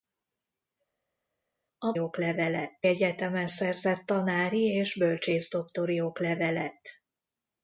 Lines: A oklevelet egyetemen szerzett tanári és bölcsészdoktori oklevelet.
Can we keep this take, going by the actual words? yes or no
yes